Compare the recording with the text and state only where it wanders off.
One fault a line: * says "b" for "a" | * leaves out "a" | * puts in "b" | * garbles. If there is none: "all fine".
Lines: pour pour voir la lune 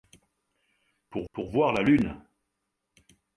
all fine